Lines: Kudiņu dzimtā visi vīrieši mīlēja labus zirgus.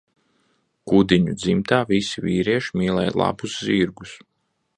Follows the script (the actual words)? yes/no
yes